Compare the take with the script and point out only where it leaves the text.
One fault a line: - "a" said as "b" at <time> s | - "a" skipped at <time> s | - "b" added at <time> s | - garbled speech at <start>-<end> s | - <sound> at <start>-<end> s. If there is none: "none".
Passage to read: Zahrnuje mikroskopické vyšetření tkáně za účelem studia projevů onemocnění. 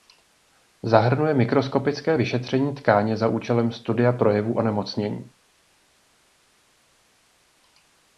none